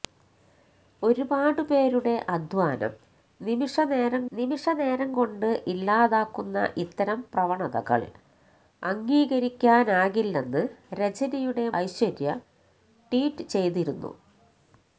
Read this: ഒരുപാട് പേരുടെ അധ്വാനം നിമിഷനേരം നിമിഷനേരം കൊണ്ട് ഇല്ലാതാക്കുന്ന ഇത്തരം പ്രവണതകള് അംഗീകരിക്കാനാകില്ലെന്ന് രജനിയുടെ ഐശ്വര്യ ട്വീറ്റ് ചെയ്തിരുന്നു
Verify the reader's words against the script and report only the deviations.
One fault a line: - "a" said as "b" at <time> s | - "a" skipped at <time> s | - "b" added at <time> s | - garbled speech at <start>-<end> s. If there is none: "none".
none